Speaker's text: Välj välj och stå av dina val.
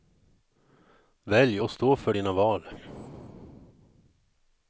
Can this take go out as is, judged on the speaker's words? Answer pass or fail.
fail